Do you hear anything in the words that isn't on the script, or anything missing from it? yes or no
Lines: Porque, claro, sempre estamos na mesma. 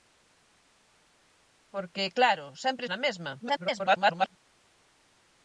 yes